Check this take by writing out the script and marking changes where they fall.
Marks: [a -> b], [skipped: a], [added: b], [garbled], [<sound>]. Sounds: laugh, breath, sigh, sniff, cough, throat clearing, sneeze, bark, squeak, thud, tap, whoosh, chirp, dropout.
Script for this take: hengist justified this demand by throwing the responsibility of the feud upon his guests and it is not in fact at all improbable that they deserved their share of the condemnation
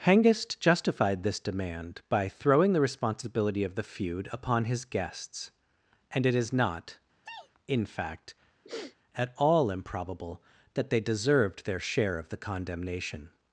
hengist justified this demand by throwing the responsibility of the feud upon his guests and it is not [sneeze] in fact [sniff] at all improbable that they deserved their share of the condemnation